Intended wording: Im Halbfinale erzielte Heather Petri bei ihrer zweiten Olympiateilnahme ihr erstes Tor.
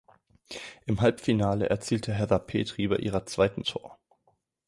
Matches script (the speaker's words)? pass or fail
fail